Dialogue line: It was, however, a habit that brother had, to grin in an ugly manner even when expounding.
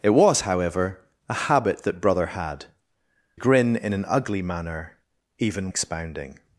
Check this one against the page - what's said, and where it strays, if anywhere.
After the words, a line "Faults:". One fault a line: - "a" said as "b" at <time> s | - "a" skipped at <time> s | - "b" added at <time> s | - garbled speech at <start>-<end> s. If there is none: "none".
It was, however, a habit that brother had, grin in an ugly manner even expounding.
Faults:
- "to" skipped at 2.6 s
- "when" skipped at 5.7 s